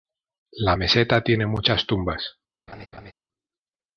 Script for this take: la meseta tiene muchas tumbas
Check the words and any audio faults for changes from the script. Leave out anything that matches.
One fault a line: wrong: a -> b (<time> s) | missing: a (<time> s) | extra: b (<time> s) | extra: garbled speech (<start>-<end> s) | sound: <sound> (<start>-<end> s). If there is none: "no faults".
sound: laugh (2.7-3.1 s)